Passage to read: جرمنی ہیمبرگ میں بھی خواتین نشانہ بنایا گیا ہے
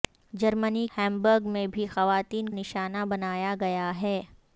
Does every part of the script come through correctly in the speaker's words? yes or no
yes